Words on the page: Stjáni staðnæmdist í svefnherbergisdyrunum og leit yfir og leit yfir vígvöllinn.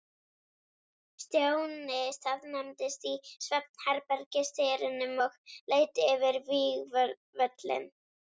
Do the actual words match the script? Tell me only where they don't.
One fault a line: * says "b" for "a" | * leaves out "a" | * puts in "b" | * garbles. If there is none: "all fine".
* leaves out "og leit yfir"